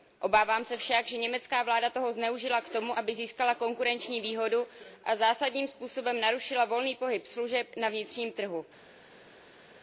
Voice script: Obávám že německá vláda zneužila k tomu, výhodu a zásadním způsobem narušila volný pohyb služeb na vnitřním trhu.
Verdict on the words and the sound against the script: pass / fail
fail